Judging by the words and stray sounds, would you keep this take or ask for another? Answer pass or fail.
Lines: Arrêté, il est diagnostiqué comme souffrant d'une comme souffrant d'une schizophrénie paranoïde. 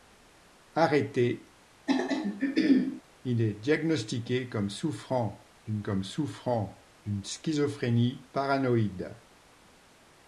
fail